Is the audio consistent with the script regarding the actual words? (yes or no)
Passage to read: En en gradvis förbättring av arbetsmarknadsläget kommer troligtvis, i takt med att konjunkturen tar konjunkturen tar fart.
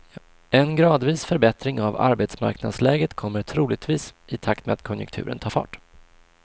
no